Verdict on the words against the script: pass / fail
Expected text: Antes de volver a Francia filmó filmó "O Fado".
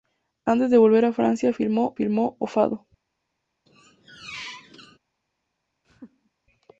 pass